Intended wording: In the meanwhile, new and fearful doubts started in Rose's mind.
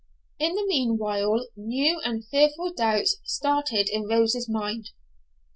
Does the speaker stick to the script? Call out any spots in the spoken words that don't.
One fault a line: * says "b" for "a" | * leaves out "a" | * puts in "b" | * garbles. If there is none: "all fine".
all fine